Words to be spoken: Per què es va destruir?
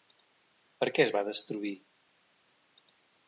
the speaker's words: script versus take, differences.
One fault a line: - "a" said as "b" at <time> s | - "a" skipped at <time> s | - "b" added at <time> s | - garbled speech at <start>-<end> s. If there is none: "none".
none